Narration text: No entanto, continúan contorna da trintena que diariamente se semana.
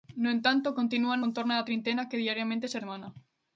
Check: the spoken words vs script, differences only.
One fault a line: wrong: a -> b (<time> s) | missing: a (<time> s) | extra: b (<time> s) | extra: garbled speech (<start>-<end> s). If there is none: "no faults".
no faults